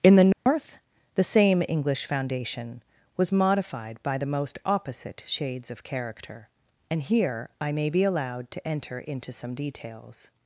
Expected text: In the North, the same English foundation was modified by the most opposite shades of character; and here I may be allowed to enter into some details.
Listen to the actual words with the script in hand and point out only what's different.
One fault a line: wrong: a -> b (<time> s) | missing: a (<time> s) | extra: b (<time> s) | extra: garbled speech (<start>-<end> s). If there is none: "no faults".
no faults